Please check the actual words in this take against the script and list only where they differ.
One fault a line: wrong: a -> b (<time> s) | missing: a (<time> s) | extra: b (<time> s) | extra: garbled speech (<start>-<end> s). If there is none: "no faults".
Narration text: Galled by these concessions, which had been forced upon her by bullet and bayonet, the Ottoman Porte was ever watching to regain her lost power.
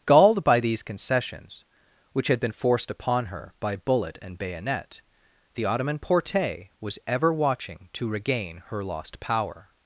no faults